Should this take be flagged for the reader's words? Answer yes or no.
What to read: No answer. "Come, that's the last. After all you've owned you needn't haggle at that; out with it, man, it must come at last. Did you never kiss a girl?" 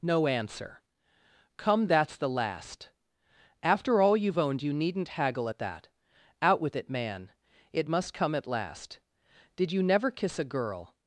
no